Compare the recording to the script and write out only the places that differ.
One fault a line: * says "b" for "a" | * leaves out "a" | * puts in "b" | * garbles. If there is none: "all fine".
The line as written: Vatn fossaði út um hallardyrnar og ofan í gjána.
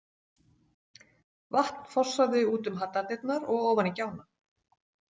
all fine